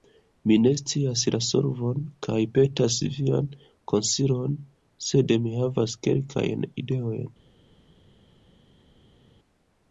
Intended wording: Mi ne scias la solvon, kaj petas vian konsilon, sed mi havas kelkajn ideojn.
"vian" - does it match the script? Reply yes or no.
yes